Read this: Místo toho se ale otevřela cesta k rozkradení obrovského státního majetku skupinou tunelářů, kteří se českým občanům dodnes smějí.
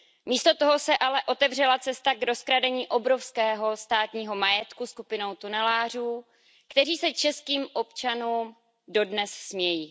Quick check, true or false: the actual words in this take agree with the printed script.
true